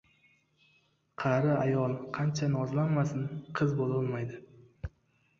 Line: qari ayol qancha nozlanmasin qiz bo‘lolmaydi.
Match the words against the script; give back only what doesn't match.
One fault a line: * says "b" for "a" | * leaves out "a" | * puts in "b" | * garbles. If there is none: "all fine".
all fine